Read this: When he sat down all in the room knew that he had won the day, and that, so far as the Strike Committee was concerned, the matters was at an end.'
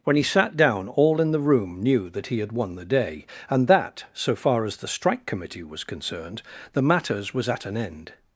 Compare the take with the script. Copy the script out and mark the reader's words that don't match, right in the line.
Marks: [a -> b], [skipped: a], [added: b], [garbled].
When he sat down all in the room knew that he had won the day, and that, so far as the Strike Committee was concerned, the matters was at an end.'